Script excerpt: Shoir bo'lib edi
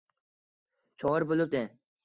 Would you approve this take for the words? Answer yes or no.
yes